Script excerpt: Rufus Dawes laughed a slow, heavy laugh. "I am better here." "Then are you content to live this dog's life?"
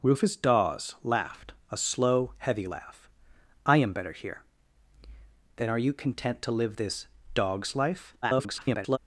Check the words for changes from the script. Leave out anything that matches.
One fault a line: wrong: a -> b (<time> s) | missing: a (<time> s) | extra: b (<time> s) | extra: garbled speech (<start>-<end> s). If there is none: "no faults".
extra: garbled speech (8.2-9.0 s)